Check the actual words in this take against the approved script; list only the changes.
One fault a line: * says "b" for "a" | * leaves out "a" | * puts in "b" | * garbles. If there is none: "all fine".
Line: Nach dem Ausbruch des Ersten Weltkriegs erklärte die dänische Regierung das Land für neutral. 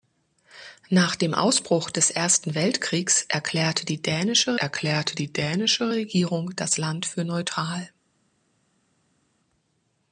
* puts in "erklärte die dänische"